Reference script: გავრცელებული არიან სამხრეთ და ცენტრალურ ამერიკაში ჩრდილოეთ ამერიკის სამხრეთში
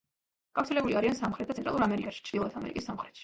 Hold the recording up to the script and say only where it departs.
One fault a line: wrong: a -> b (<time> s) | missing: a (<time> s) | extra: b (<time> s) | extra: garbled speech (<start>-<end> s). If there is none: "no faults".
no faults